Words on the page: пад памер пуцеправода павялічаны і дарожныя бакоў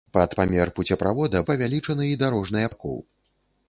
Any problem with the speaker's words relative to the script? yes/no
no